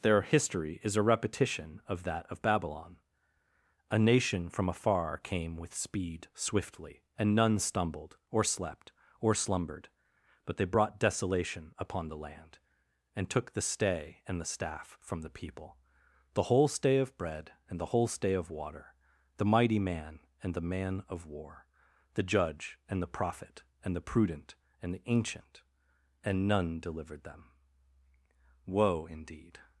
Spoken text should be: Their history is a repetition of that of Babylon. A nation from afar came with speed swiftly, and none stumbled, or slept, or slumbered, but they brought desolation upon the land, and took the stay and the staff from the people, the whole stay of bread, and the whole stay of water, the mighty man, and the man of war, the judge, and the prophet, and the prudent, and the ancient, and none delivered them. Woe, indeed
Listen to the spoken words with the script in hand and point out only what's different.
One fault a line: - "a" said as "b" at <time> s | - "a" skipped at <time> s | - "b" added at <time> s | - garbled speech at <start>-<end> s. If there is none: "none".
none